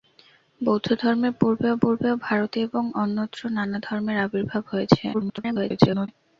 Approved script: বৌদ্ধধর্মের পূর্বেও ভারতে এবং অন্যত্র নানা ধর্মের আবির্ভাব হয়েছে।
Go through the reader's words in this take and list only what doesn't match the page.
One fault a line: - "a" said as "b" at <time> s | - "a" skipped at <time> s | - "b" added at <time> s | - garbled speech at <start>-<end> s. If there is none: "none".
- "পূর্বেও" added at 1.8 s
- garbled speech at 5.1-6.1 s